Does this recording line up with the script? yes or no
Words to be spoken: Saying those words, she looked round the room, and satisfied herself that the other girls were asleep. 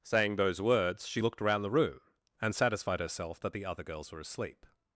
no